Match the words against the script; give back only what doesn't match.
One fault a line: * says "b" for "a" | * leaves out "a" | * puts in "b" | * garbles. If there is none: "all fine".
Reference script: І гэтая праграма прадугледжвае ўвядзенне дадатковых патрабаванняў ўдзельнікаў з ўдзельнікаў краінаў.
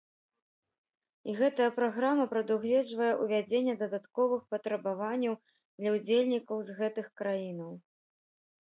* puts in "для"
* says "гэтых" for "ўдзельнікаў"